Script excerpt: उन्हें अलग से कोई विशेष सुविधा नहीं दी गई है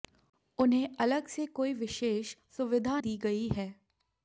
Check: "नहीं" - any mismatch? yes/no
yes